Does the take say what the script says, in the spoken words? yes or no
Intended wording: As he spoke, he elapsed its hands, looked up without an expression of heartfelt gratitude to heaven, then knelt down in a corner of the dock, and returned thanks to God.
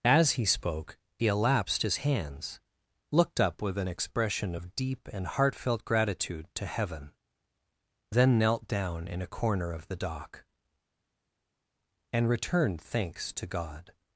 no